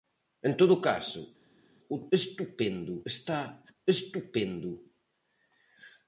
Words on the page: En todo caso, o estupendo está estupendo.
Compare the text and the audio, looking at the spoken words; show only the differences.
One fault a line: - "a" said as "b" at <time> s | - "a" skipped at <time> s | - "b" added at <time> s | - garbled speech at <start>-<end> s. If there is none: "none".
none